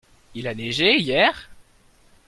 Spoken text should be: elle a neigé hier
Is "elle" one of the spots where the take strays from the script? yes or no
yes